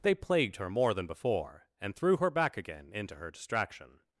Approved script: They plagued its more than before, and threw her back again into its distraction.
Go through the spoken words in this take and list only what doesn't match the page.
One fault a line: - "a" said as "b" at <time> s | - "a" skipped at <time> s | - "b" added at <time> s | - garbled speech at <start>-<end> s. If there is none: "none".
- "its" said as "her" at 0.6 s
- "its" said as "her" at 3.1 s